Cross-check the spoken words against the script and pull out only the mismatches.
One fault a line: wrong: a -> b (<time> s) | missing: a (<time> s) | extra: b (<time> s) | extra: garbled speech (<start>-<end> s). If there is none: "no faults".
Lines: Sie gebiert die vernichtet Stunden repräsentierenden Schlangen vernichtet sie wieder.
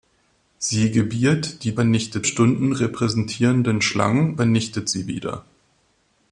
no faults